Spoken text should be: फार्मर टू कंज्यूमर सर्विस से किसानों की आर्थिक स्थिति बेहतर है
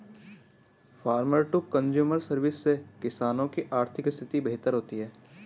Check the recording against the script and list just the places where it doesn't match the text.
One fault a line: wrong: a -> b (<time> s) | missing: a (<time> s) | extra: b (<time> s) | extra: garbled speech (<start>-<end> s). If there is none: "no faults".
extra: होती (4.7 s)